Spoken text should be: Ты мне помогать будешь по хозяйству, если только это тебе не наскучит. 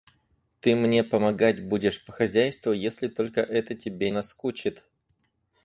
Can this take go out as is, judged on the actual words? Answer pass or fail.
fail